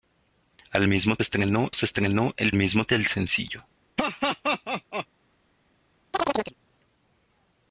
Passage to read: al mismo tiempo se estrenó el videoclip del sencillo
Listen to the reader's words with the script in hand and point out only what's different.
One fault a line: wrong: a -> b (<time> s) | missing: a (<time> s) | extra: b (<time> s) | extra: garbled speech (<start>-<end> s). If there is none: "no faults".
wrong: tiempo -> estrenó (1.2 s)
wrong: videoclip -> mismo (2.5 s)